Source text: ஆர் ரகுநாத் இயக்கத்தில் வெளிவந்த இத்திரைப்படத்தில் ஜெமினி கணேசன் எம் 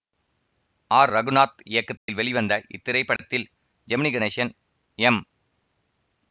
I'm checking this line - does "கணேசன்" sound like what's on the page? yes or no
yes